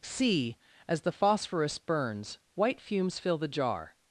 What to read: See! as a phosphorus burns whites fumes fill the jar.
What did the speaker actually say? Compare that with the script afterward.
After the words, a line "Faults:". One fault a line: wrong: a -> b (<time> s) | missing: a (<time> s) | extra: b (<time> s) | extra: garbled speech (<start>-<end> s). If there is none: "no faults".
See! as the phosphorus burns white fumes fill the jar.
Faults:
wrong: a -> the (1.0 s)
wrong: whites -> white (2.5 s)